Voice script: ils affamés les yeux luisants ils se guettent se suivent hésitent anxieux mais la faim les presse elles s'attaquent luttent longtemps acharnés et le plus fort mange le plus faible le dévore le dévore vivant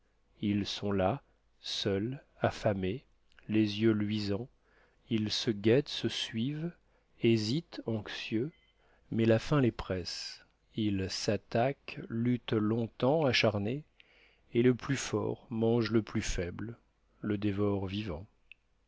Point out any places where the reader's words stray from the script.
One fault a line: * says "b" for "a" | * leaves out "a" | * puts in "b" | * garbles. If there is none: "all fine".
* puts in "sont là seuls"
* says "ils" for "elles"
* leaves out "le dévore"